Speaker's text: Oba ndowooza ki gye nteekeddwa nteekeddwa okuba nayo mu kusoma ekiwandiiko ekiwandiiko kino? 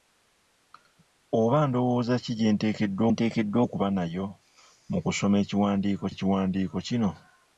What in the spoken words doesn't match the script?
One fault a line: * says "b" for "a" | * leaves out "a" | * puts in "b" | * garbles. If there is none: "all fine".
all fine